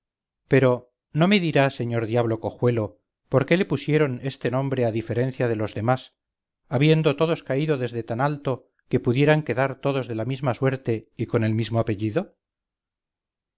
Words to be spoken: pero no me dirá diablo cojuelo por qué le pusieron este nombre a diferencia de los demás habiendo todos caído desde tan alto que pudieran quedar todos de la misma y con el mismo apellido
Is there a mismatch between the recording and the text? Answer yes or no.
yes